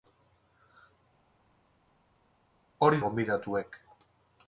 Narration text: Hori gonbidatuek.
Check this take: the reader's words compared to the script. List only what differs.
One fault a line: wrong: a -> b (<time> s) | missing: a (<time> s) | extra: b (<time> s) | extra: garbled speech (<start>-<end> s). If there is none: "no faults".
no faults